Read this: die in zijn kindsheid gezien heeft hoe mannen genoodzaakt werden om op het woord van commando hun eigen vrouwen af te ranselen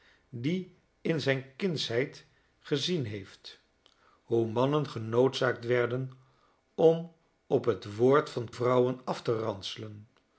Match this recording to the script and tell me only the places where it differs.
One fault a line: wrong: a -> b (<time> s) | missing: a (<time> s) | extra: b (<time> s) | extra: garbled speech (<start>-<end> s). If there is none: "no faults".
missing: commando hun eigen (8.5 s)